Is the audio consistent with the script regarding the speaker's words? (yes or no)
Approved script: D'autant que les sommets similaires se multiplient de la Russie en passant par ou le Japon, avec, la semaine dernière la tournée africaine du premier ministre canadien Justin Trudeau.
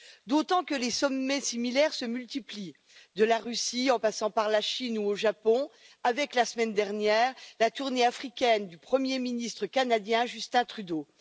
no